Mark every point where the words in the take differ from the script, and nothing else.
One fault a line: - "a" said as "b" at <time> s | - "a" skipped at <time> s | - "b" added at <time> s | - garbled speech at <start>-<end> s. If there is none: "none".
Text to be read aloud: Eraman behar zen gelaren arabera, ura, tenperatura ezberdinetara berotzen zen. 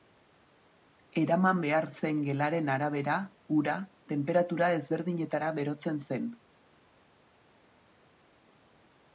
none